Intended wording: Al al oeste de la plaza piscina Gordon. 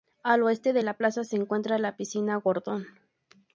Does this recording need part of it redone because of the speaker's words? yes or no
yes